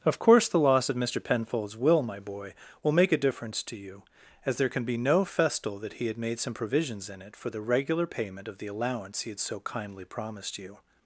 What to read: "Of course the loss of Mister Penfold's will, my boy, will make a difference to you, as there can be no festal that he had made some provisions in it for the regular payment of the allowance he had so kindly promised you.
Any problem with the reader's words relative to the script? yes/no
no